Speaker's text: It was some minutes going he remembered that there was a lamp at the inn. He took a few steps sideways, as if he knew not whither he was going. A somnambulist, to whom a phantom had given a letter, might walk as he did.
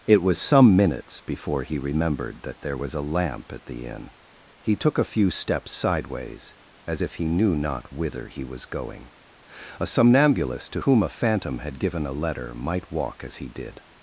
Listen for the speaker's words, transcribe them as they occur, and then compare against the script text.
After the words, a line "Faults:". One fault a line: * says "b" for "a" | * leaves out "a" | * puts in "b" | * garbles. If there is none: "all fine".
It was some minutes before he remembered that there was a lamp at the inn. He took a few steps sideways, as if he knew not whither he was going. A somnambulist, to whom a phantom had given a letter, might walk as he did.
Faults:
* says "before" for "going"